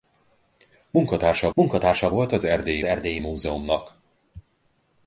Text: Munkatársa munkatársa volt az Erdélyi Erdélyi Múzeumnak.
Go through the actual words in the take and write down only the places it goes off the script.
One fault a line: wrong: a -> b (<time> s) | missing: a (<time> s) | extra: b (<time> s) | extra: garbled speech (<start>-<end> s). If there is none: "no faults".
no faults